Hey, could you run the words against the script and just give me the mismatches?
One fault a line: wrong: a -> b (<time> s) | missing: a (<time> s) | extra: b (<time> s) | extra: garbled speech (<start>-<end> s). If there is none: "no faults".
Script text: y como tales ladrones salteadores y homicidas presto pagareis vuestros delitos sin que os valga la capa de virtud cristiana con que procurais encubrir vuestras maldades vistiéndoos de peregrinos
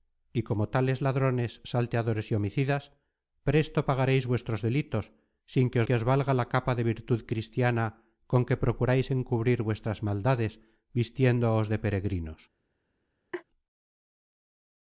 extra: que (5.8 s)